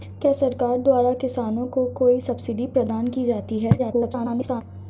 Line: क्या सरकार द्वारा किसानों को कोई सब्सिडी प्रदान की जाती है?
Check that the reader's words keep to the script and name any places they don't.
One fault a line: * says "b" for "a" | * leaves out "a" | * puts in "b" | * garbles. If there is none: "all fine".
* garbles